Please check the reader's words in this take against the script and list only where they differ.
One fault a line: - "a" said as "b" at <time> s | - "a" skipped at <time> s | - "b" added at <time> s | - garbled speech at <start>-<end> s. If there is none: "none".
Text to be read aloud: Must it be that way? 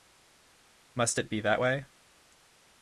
none